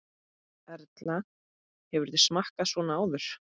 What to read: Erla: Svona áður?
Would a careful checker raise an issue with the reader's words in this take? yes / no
yes